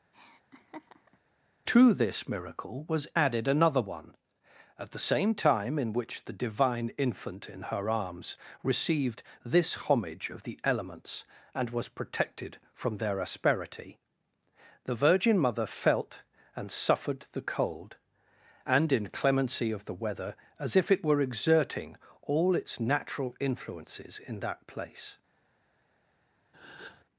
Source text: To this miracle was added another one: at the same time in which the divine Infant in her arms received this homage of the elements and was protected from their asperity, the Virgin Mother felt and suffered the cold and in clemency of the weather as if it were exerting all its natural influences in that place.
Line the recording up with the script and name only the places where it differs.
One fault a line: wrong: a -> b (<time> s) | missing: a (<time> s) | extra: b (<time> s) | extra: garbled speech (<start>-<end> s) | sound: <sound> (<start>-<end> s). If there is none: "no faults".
sound: laugh (0.1-1.2 s)
sound: breath (26.5-27.0 s)